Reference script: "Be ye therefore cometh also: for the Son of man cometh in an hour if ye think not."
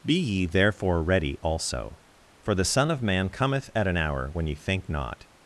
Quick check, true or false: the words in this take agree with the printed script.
false